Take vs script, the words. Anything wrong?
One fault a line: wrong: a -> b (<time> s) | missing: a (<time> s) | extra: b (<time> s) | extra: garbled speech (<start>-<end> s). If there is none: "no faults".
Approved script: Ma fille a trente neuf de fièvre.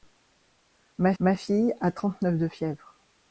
extra: ma (1.2 s)